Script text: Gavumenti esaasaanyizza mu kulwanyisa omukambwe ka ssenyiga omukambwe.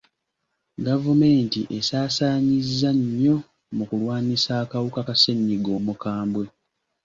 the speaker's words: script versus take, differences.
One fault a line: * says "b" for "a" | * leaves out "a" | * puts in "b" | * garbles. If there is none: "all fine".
* puts in "nnyo"
* says "akawuka" for "omukambwe"